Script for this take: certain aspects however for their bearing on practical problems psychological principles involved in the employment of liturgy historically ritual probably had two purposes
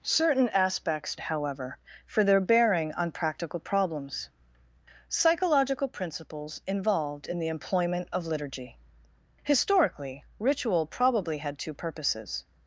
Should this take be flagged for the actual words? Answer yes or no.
no